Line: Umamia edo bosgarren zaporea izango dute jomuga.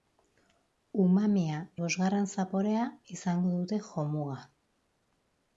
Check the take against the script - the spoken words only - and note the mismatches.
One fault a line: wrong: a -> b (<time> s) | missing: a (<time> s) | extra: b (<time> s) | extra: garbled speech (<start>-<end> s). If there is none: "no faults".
missing: edo (1.6 s)